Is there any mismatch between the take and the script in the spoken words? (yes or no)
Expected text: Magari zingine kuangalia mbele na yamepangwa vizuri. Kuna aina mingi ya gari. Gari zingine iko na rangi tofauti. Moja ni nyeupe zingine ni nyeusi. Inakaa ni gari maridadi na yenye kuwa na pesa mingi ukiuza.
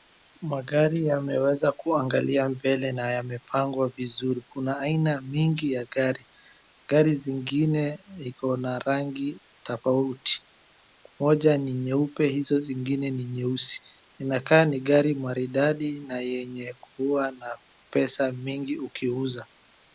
yes